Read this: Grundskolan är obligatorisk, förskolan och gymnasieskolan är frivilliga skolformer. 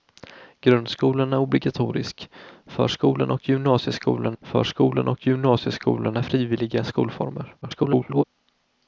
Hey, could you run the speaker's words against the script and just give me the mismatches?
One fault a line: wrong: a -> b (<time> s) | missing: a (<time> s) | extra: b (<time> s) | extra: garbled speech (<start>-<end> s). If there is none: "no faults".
extra: förskolan och gymnasieskolan (4.4 s)
extra: garbled speech (7.6-8.2 s)